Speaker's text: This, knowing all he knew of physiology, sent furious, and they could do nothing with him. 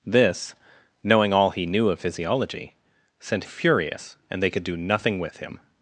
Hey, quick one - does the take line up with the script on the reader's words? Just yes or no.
yes